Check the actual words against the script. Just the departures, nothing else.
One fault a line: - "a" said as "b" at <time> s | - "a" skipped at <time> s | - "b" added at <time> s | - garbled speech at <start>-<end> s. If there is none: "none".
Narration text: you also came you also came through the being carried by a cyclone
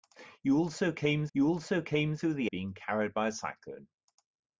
none